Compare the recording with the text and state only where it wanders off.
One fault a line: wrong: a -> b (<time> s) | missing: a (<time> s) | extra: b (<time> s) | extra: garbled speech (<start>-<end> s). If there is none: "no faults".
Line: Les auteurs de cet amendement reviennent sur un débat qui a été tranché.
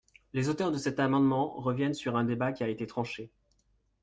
no faults